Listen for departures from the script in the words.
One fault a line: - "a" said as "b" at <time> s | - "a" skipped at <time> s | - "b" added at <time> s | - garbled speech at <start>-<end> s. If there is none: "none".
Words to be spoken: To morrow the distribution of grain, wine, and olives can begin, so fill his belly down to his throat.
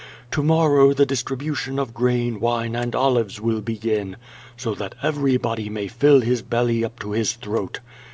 - "can" said as "will" at 3.4 s
- "that everybody may" added at 4.7 s
- "down" said as "up" at 6.8 s